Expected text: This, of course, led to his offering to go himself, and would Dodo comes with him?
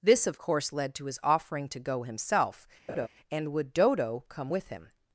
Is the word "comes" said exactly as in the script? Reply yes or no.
no